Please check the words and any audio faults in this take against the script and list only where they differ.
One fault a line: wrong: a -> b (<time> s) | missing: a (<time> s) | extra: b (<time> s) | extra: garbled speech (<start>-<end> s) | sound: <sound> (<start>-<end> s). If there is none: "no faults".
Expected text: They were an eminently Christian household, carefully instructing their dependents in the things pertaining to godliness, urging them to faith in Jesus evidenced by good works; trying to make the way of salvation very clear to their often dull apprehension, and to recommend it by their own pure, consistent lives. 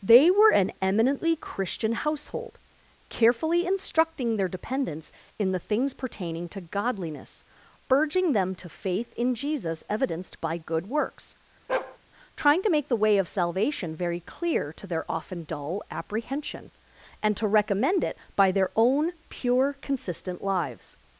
sound: bark (11.7-12.0 s)